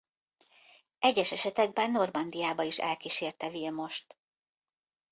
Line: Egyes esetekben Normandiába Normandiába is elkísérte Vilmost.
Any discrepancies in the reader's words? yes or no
yes